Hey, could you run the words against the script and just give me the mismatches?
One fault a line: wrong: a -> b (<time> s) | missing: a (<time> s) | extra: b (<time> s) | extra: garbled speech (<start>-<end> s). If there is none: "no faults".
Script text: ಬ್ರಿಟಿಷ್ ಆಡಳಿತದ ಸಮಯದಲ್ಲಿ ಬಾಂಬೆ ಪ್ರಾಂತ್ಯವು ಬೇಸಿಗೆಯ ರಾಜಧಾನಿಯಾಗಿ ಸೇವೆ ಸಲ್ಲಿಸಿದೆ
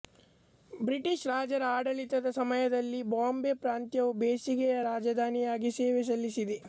extra: ರಾಜರ (1.3 s)